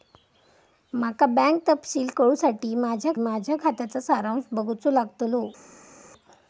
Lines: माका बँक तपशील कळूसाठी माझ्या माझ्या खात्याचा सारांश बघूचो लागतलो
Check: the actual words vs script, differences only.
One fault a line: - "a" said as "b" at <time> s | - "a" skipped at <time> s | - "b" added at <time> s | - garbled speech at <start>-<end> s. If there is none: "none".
none